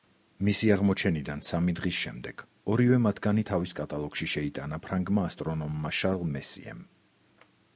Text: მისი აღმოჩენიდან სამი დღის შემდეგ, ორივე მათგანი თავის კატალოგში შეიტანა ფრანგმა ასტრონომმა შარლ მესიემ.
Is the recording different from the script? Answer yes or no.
no